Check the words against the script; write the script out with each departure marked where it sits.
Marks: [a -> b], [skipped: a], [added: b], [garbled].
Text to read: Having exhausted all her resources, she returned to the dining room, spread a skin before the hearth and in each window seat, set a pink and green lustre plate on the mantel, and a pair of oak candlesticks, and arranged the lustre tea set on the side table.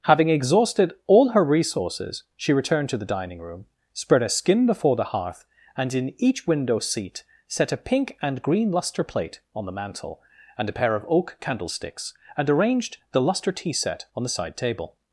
Having exhausted all her resources, she returned to the dining room, spread a skin before the hearth and in each window seat, set a pink and green lustre plate on the mantel, and a pair of oak candlesticks, and arranged the lustre tea set on the side table.